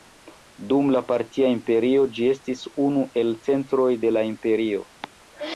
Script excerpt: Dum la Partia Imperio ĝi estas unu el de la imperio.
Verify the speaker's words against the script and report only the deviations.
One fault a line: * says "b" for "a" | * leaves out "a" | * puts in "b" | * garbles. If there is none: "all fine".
* says "estis" for "estas"
* puts in "centroj"